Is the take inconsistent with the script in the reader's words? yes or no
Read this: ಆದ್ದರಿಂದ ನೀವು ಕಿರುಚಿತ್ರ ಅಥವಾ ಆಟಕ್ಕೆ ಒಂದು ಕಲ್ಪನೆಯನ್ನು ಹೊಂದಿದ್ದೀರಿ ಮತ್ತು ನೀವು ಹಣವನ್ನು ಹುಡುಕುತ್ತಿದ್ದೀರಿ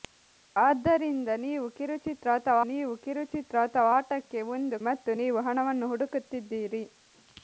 yes